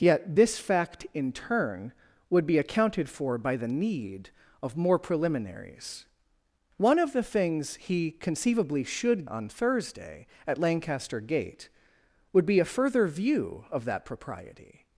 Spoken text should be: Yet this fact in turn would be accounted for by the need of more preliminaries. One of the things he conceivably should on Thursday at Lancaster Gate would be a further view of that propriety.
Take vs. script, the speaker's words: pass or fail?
pass